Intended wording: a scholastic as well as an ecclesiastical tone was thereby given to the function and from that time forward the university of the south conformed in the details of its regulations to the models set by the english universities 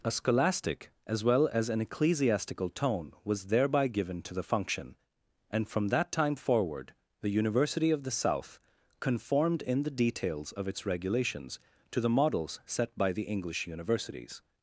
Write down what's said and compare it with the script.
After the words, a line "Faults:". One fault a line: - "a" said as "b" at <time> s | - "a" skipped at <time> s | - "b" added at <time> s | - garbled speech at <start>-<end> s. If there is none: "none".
a scholastic as well as an ecclesiastical tone was thereby given to the function and from that time forward the university of the south conformed in the details of its regulations to the models set by the english universities
Faults:
none